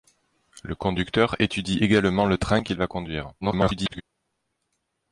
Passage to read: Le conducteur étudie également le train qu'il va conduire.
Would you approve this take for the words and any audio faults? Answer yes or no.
no